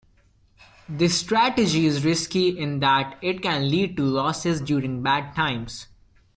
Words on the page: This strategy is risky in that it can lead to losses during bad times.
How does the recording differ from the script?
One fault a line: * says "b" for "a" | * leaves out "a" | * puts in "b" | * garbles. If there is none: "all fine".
all fine